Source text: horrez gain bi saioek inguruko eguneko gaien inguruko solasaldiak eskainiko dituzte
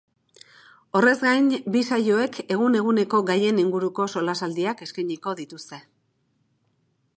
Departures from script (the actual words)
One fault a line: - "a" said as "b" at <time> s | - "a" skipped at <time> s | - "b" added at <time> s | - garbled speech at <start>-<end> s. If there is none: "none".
- "inguruko" said as "egun" at 2.5 s